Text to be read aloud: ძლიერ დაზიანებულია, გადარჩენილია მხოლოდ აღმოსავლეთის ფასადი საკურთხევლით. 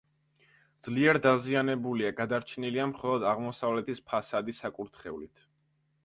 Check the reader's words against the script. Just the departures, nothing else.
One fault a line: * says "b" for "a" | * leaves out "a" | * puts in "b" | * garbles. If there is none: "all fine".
all fine